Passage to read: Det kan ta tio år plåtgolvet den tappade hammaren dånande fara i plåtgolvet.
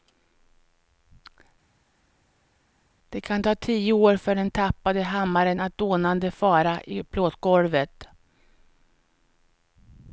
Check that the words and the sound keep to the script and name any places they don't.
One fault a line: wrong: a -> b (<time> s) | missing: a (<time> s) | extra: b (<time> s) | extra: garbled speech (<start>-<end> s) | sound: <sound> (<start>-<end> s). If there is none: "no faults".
wrong: plåtgolvet -> för (4.2 s)
extra: att (5.6 s)